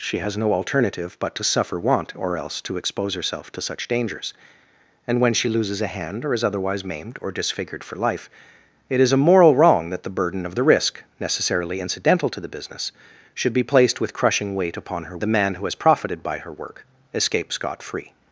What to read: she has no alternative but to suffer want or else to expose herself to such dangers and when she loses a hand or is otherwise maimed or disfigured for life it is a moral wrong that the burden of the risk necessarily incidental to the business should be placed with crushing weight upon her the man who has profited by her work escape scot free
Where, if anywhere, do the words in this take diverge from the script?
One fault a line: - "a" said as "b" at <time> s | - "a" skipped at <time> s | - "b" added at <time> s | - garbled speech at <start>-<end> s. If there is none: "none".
none